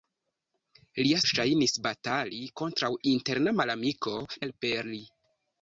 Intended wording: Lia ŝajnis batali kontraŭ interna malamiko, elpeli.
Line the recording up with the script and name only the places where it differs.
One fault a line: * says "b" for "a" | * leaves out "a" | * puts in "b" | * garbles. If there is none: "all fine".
all fine